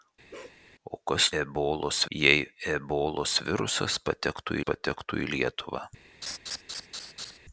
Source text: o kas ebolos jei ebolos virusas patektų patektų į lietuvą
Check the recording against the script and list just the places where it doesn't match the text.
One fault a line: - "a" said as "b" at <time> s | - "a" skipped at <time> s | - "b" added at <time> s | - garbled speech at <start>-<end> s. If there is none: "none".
none